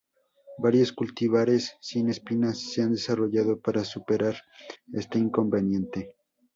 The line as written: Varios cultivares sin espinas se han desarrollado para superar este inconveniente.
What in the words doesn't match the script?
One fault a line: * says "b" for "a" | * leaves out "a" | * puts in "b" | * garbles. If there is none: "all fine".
all fine